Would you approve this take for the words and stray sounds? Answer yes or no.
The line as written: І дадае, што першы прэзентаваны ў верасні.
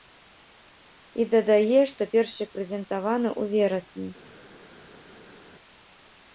yes